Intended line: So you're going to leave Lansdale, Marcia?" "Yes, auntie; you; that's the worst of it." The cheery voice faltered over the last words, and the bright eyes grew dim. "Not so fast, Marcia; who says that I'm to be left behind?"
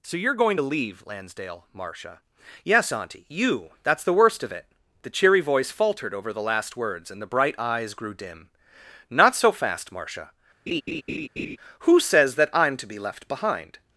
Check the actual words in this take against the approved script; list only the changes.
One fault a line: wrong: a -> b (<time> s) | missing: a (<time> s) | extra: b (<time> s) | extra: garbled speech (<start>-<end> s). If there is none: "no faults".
no faults